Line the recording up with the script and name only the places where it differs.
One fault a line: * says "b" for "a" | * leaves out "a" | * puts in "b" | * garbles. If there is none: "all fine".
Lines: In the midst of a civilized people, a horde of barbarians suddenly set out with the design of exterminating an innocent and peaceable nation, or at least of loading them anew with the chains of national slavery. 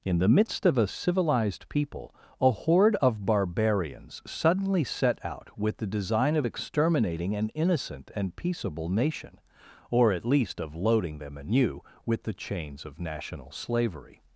all fine